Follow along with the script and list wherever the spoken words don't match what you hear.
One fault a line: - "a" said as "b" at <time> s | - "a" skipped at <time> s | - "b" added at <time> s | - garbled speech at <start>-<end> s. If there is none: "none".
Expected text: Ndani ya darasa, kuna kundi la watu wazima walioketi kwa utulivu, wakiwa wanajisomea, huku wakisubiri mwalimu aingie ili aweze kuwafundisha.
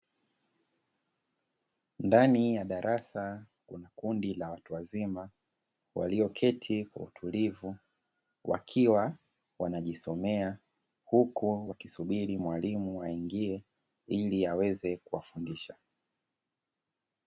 none